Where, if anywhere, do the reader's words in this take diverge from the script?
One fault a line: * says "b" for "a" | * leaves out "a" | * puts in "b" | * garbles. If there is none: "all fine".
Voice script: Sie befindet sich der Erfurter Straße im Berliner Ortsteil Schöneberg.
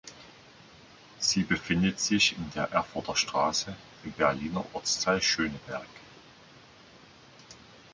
* puts in "in"